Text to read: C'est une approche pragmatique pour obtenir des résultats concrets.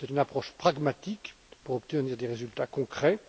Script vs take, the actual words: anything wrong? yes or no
no